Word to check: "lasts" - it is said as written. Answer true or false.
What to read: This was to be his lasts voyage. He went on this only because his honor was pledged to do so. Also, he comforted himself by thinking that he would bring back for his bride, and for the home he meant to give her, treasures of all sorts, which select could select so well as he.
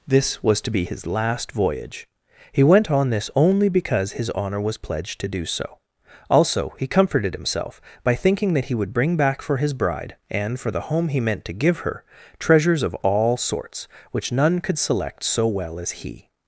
false